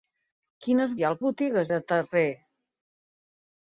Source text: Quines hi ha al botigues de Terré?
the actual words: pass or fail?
pass